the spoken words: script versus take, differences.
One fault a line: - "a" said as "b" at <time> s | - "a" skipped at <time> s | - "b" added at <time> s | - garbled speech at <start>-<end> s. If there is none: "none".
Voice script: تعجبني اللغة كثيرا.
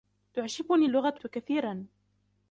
none